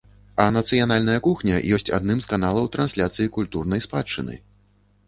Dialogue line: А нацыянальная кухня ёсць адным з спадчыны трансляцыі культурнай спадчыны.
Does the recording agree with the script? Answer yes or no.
no